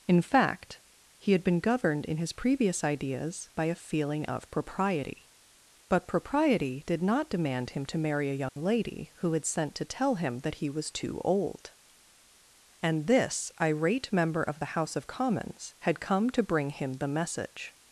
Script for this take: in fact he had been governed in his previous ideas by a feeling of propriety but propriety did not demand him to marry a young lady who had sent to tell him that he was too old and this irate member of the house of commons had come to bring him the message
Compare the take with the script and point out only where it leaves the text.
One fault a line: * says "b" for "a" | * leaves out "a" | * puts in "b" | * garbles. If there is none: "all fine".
all fine